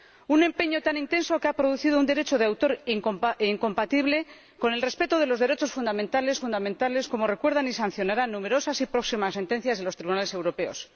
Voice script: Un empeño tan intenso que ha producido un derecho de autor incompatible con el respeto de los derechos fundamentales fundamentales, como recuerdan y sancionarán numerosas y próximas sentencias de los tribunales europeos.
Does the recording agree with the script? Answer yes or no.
yes